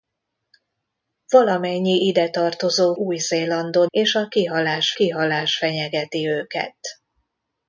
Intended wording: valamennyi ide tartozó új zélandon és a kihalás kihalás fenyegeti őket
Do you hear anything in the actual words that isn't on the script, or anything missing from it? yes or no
no